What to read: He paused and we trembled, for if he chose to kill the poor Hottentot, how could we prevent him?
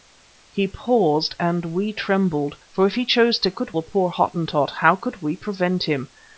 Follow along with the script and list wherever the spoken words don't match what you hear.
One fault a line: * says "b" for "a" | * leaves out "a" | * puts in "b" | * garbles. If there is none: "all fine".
* says "could" for "kill"